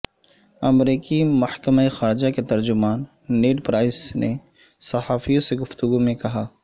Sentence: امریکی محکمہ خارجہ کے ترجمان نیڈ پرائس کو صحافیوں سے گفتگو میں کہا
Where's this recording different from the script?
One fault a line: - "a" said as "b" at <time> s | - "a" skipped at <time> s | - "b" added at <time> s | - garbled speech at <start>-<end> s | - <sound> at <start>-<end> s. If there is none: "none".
- "کو" said as "نے" at 4.1 s